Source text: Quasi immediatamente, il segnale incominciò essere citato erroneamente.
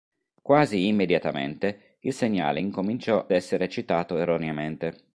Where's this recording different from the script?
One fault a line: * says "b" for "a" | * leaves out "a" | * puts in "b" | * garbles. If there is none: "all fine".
all fine